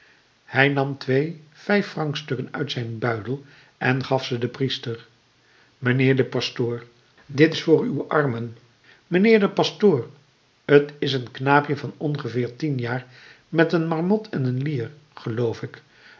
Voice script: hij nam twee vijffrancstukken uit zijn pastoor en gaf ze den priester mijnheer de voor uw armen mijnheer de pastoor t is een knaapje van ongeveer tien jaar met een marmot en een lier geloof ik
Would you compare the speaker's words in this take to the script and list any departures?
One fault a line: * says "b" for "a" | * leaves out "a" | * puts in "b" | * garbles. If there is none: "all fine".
* says "buidel" for "pastoor"
* puts in "pastoor dit is"